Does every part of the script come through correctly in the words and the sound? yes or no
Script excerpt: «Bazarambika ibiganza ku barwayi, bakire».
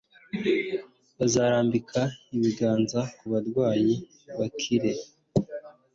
yes